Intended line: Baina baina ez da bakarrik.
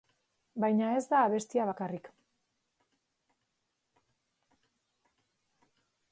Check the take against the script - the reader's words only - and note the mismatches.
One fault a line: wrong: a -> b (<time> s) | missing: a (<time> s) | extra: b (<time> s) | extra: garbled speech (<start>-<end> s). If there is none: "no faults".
missing: baina (0.9 s)
extra: abestia (1.2 s)